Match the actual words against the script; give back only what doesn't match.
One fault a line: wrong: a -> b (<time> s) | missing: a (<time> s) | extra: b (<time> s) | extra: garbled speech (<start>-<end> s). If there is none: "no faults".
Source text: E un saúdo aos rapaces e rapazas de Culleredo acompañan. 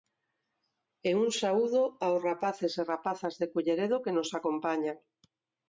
extra: que nos (4.0 s)